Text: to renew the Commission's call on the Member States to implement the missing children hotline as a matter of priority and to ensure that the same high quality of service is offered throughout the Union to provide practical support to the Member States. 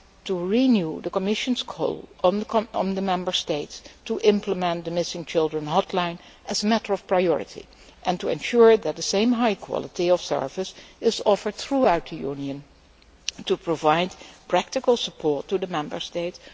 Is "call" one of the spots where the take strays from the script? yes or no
no